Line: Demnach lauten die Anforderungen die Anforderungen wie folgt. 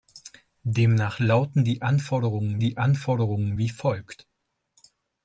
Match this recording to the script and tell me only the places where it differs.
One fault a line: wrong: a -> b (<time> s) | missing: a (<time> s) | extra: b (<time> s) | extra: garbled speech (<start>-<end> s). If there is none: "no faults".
no faults